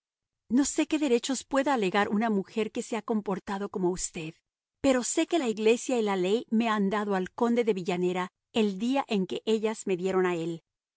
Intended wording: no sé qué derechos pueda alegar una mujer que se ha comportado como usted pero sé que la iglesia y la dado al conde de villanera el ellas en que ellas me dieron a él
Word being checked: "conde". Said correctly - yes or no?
yes